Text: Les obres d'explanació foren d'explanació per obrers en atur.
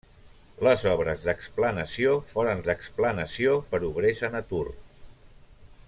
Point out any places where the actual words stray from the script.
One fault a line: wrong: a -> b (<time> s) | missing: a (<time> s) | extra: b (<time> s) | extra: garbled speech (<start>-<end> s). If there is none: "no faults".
no faults